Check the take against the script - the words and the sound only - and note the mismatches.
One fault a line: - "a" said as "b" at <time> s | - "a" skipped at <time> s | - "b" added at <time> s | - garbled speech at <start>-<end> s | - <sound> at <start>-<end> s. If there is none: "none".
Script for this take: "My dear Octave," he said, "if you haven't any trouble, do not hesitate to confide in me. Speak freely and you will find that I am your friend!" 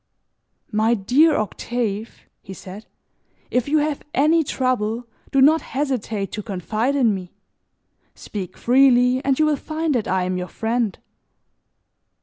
- "haven't" said as "have" at 3.8 s